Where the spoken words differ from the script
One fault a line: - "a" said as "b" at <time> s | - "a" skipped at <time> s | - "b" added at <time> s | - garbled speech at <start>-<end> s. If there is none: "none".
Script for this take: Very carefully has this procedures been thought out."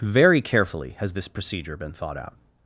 - "procedures" said as "procedure" at 1.3 s